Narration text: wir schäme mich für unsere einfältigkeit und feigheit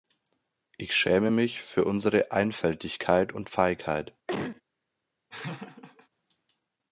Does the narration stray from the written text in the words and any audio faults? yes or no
yes